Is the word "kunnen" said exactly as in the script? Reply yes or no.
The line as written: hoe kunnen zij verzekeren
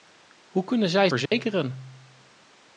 yes